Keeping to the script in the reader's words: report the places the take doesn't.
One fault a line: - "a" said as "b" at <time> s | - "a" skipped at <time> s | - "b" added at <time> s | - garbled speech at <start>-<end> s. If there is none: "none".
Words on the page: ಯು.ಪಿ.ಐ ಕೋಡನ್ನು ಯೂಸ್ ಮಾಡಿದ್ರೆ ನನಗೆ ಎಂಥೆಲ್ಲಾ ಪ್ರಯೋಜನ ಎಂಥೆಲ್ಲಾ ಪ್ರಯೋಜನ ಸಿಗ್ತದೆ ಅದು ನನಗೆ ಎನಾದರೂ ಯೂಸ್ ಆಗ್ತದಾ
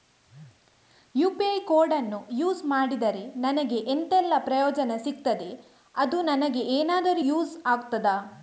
- "ಎಂಥೆಲ್ಲಾ ಪ್ರಯೋಜನ" skipped at 4.9 s